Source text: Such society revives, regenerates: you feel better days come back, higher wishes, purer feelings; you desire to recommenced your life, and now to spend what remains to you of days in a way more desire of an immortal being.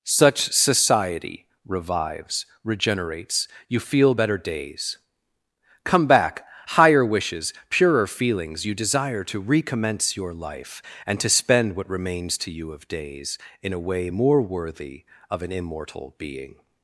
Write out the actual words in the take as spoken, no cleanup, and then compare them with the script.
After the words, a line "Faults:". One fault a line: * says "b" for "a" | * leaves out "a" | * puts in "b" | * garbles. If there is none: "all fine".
Such society revives, regenerates: you feel better days come back, higher wishes, purer feelings; you desire to recommence your life, and to spend what remains to you of days in a way more worthy of an immortal being.
Faults:
* says "recommence" for "recommenced"
* leaves out "now"
* says "worthy" for "desire"